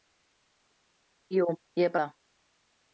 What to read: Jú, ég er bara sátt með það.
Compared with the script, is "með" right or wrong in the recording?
wrong